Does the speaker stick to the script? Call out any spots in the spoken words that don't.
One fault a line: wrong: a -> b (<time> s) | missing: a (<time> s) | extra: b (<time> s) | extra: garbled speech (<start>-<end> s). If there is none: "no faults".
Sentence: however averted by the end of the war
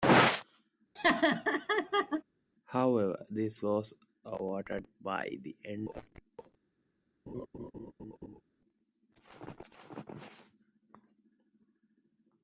extra: this was (3.3 s)